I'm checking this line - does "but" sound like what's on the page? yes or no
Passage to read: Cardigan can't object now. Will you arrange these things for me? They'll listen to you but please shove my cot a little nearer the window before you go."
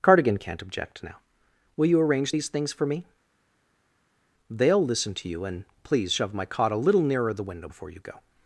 no